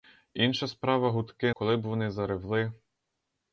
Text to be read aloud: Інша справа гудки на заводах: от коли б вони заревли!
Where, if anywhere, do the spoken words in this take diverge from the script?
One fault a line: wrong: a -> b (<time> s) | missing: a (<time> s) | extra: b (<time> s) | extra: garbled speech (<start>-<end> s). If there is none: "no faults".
missing: на заводах от (1.5 s)